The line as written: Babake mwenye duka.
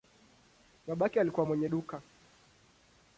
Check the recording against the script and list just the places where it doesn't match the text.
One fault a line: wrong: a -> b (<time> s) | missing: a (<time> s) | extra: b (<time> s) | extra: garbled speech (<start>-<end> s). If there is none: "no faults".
extra: alikuwa (1.2 s)